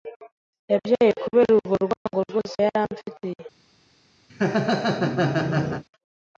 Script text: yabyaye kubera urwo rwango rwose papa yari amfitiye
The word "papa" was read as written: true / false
false